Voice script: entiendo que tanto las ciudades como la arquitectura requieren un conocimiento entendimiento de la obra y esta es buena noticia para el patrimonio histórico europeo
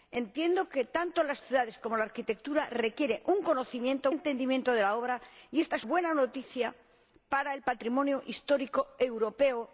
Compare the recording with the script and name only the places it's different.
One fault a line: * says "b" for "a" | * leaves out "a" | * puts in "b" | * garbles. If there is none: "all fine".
all fine